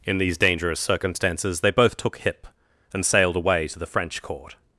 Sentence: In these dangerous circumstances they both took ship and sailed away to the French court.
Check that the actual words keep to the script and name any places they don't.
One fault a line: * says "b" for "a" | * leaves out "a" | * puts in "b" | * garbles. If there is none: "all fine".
* says "hip" for "ship"